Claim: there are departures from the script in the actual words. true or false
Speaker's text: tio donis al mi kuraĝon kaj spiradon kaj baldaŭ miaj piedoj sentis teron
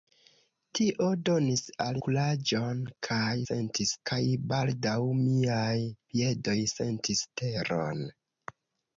true